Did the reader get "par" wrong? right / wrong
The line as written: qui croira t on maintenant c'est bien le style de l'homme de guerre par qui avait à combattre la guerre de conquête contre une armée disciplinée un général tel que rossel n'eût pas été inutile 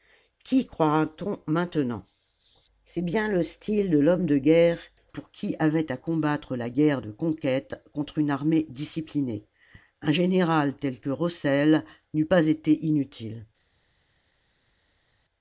wrong